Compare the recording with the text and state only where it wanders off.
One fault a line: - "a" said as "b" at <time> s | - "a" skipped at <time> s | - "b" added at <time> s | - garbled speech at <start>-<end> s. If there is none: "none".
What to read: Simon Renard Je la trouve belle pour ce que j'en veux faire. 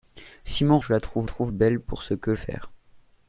- "Renard" skipped at 0.8 s
- "trouve" added at 1.3 s
- "j'en veux" skipped at 2.3 s